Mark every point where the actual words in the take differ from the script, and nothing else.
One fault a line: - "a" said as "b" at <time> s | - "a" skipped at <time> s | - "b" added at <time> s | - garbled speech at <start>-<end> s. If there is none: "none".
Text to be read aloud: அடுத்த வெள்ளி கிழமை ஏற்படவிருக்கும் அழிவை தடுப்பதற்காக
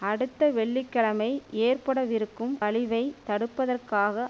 none